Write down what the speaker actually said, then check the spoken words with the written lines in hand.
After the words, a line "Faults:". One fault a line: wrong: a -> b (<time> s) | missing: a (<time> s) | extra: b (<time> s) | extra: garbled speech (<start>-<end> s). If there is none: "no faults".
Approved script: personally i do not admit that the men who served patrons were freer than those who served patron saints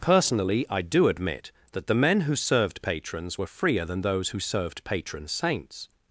personally i do admit that the men who served patrons were freer than those who served patron saints
Faults:
missing: not (1.1 s)